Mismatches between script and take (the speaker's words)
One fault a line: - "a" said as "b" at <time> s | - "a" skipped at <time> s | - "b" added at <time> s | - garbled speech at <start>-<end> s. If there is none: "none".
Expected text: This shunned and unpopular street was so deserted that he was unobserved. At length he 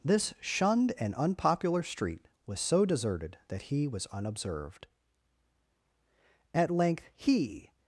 none